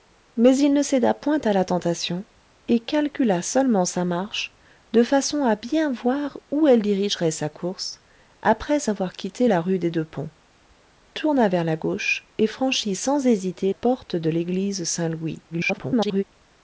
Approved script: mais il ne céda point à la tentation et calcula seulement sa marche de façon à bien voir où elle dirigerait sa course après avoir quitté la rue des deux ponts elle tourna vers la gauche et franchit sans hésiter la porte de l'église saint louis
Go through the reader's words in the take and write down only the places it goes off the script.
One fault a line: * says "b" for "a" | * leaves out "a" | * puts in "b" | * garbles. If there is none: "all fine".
* leaves out "elle"
* leaves out "la"
* garbles